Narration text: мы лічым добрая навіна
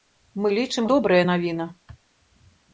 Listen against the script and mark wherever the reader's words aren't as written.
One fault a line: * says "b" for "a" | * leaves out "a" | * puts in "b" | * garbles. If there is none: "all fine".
all fine